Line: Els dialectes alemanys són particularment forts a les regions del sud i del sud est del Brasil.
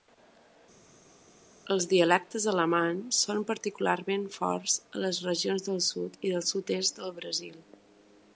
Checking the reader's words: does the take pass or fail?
pass